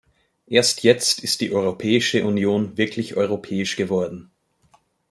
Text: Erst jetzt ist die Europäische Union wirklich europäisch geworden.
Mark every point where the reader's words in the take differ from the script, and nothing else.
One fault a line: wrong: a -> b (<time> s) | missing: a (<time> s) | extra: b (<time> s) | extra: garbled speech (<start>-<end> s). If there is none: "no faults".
no faults